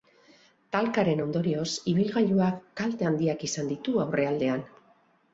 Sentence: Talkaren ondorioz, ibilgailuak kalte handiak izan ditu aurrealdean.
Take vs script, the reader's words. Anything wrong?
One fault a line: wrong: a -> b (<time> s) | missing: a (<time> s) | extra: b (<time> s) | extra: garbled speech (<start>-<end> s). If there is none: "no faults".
no faults